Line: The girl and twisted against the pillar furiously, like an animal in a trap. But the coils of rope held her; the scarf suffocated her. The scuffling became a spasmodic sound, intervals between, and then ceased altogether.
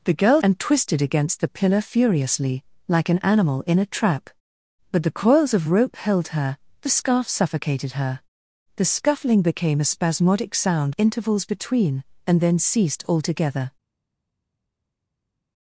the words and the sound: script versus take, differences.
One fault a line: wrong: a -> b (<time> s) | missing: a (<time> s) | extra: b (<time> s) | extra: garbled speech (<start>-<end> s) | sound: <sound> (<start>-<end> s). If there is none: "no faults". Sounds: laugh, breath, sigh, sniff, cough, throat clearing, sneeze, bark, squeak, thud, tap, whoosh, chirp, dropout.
no faults